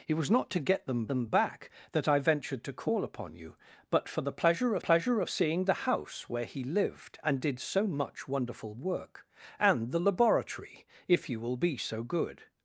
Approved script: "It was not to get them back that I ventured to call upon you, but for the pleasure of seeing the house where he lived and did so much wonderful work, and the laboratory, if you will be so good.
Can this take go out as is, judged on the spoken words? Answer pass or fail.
fail